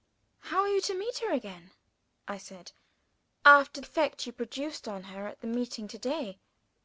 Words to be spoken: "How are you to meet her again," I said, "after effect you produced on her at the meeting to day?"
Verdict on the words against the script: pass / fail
pass